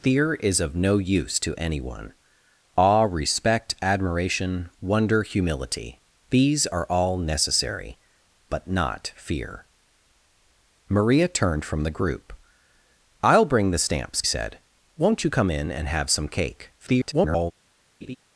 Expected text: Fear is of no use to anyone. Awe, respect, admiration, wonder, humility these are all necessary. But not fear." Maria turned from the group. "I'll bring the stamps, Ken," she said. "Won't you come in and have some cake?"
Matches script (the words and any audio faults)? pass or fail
fail